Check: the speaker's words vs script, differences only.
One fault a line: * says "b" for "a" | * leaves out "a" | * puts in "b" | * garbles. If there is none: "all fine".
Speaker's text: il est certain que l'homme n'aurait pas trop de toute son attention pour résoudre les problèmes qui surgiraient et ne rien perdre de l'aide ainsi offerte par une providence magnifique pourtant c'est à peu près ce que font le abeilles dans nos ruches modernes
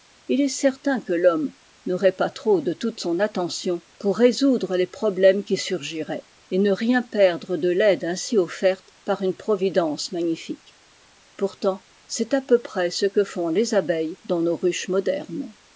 * says "les" for "le"